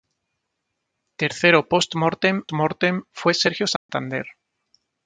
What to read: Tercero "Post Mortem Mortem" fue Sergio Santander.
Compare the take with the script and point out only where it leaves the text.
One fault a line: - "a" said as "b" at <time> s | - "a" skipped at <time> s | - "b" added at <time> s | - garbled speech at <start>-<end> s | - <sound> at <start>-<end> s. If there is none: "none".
- dropout at 3.8-3.9 s